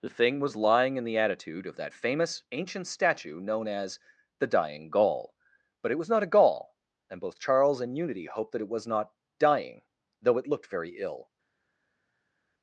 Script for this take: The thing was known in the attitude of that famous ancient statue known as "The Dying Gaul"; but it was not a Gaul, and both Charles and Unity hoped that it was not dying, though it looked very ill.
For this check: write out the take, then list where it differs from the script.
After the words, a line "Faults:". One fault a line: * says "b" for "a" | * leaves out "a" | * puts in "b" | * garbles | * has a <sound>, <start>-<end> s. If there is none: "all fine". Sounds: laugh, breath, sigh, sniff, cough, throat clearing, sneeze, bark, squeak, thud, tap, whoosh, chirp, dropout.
The thing was lying in the attitude of that famous ancient statue known as "The Dying Gaul"; but it was not a Gaul, and both Charles and Unity hoped that it was not dying, though it looked very ill.
Faults:
* says "lying" for "known"